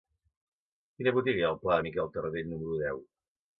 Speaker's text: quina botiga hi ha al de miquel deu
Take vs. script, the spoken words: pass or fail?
fail